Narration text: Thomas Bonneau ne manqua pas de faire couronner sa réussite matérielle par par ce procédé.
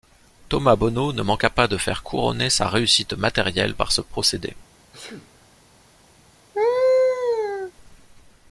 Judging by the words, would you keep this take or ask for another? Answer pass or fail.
fail